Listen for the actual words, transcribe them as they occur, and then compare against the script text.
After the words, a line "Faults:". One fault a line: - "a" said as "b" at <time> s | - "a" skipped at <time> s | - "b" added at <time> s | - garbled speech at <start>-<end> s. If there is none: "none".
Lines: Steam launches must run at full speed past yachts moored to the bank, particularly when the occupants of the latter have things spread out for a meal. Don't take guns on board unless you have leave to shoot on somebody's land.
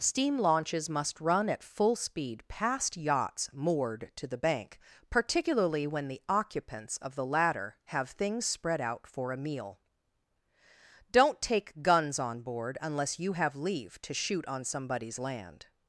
Steam launches must run at full speed past yachts moored to the bank, particularly when the occupants of the latter have things spread out for a meal. Don't take guns on board unless you have leave to shoot on somebody's land.
Faults:
none